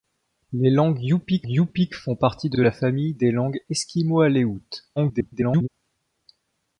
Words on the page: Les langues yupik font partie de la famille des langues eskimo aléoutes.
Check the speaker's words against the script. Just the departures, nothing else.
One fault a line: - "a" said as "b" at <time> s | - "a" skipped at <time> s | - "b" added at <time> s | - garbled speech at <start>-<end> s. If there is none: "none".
- "yupik" added at 1.5 s
- "de" added at 2.5 s
- garbled speech at 5.0-5.7 s